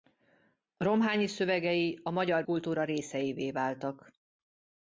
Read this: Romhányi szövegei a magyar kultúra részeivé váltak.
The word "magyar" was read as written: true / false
true